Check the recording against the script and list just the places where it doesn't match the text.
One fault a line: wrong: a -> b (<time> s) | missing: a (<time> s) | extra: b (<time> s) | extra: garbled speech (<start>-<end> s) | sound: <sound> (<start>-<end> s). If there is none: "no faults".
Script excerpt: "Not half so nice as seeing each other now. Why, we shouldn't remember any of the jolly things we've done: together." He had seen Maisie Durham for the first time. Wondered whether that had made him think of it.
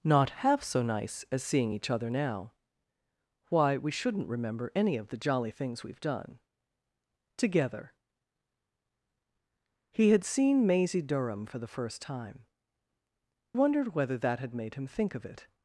no faults